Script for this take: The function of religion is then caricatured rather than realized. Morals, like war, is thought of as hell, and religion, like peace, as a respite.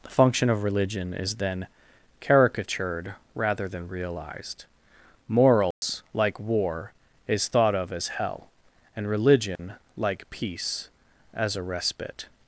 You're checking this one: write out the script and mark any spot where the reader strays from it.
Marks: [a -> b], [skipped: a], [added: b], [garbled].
The function of religion is then caricatured rather than realized. Morals, like war, is thought of as hell, and religion, like peace, as a respite.